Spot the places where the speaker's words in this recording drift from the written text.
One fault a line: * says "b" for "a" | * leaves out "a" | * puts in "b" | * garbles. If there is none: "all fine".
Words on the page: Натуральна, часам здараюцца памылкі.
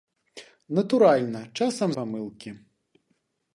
* leaves out "здараюцца"